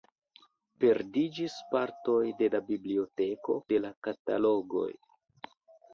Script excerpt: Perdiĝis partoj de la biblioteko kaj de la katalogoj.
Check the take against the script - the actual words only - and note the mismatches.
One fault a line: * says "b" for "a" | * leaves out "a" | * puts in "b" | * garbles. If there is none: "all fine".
* leaves out "kaj"